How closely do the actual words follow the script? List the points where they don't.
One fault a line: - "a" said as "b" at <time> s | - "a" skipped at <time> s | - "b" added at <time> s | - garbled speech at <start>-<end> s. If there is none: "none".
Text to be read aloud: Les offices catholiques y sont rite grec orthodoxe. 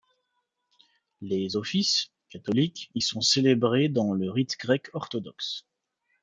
- "célébrés dans le" added at 3.2 s